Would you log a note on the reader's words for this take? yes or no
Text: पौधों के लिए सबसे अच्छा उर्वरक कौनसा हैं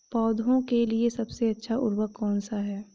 no